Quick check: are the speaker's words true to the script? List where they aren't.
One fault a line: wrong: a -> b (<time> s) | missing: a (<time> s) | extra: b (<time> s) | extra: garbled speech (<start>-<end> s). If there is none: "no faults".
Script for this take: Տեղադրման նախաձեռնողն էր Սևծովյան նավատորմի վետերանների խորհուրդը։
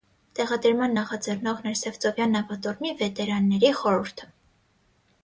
no faults